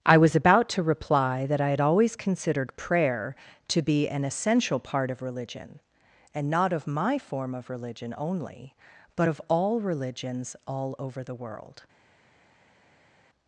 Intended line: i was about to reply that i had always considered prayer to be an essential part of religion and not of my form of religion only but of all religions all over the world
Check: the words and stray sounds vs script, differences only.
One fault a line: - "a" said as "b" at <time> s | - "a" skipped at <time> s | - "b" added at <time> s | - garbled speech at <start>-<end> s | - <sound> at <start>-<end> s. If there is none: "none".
none